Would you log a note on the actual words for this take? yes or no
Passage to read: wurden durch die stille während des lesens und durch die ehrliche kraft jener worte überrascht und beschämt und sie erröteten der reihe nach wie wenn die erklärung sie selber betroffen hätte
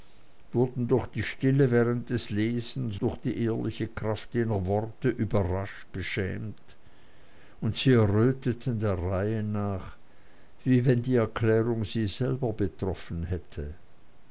yes